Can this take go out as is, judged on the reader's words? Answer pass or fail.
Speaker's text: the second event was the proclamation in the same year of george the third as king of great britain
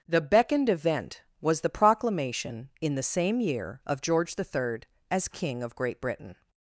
fail